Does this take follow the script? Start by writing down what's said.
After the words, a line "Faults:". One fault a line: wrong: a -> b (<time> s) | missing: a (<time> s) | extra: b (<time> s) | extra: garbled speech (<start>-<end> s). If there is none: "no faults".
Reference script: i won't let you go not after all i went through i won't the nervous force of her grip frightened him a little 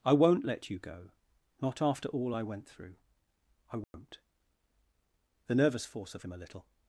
i won't let you go not after all i went through i won't the nervous force of him a little
Faults:
missing: her grip frightened (6.2 s)